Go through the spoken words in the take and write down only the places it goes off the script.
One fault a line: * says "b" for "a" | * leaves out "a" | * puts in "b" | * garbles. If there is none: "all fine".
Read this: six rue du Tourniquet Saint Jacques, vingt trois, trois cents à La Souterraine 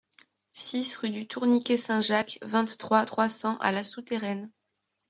all fine